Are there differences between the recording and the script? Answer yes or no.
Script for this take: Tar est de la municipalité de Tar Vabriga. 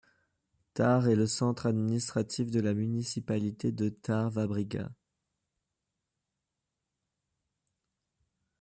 yes